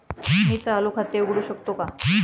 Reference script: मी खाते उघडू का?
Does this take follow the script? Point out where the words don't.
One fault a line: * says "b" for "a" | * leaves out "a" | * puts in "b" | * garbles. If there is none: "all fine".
* puts in "चालू"
* puts in "शकतो"